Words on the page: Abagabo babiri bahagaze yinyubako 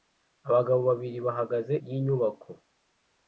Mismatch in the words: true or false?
false